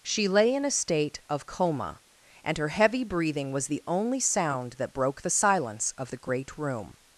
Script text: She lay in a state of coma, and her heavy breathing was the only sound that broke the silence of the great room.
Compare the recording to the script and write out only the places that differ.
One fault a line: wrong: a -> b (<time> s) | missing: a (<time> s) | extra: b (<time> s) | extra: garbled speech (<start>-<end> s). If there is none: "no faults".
no faults